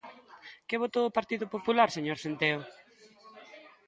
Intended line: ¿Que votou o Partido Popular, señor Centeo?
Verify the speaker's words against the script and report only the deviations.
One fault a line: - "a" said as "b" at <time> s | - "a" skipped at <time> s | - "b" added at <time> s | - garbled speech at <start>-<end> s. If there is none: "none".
none